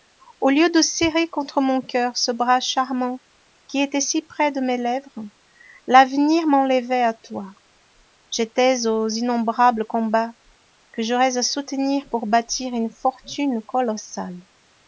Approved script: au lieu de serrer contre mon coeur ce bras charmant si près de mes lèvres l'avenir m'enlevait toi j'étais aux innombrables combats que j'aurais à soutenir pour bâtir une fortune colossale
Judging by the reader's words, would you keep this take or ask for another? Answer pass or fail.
fail